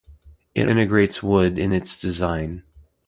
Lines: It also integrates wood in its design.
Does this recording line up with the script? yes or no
no